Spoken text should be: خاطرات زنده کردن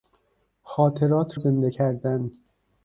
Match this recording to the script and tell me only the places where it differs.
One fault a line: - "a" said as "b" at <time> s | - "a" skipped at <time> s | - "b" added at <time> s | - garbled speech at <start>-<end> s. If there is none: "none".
none